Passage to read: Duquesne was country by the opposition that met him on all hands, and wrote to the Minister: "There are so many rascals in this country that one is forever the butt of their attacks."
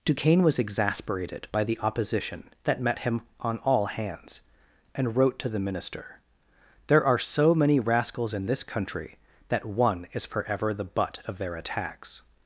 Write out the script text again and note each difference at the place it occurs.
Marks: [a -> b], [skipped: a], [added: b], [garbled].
Duquesne was [country -> exasperated] by the opposition that met him on all hands, and wrote to the Minister: "There are so many rascals in this country that one is forever the butt of their attacks."